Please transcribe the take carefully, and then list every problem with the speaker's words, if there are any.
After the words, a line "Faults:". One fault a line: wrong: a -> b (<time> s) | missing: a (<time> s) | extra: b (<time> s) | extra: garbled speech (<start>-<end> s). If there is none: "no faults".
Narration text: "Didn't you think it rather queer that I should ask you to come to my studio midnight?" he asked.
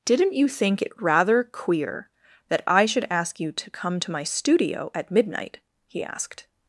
"Didn't you think it rather queer that I should ask you to come to my studio at midnight?" he asked.
Faults:
extra: at (4.9 s)